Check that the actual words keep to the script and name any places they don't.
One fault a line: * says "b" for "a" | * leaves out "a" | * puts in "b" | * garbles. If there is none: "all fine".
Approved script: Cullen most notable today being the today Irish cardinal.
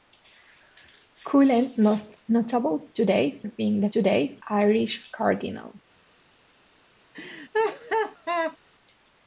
all fine